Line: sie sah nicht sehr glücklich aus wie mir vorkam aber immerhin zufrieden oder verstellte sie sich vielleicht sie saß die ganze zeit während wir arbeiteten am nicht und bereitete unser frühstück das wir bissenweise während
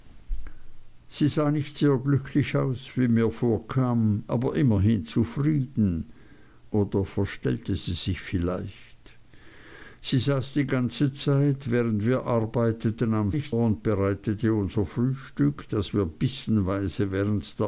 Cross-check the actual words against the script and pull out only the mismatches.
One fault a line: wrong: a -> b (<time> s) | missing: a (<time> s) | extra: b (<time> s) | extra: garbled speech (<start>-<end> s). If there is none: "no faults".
no faults